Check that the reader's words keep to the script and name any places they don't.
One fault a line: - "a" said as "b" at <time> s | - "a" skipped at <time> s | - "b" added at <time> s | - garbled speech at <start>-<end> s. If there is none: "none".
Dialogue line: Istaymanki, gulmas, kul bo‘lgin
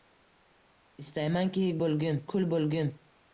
- "gulmas" said as "bo‘lgin" at 1.8 s